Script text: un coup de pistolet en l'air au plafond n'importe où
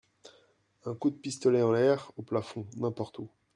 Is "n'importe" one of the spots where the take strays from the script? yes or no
no